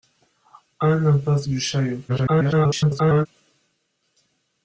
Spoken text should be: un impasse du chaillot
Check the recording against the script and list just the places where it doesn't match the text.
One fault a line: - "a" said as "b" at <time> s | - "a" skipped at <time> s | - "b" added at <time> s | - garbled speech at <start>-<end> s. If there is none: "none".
- garbled speech at 2.1-3.3 s